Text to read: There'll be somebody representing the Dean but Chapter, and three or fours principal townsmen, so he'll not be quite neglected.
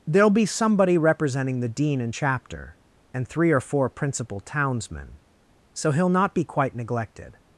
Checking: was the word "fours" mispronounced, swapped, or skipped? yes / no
yes